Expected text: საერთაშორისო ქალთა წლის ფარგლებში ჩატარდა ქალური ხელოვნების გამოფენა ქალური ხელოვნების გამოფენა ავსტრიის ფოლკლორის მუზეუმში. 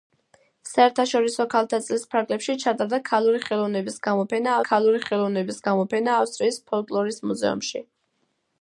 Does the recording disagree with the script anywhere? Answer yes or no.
no